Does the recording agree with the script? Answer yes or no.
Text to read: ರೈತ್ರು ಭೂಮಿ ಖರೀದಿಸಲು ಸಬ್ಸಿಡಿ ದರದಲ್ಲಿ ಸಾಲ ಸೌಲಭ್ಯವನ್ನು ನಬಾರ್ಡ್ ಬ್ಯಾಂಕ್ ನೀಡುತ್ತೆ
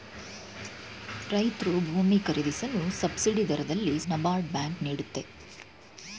no